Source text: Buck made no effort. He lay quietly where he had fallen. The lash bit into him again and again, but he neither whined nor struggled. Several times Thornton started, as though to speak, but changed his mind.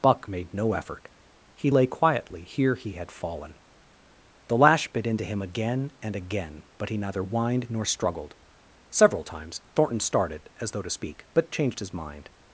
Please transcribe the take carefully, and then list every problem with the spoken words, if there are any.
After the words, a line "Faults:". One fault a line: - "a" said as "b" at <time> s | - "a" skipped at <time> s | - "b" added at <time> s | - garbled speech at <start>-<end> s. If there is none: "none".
Buck made no effort. He lay quietly here he had fallen. The lash bit into him again and again, but he neither whined nor struggled. Several times Thornton started, as though to speak, but changed his mind.
Faults:
- "where" said as "here" at 2.4 s